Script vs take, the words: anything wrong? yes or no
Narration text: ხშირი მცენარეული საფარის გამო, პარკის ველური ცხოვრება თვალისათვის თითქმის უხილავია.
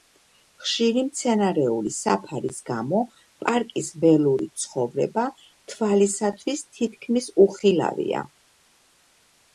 no